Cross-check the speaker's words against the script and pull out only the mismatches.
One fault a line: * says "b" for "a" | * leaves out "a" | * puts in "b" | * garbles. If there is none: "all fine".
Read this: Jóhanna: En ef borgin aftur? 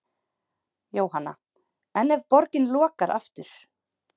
* puts in "lokar"